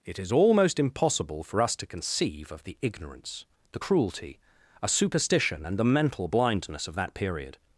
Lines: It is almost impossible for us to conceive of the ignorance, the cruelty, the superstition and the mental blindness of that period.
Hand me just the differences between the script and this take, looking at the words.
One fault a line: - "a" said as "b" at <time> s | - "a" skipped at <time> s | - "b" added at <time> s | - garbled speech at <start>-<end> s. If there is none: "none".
- "the" said as "a" at 4.8 s